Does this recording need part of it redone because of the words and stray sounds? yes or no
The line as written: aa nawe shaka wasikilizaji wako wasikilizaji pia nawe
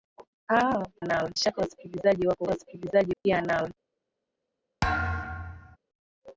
yes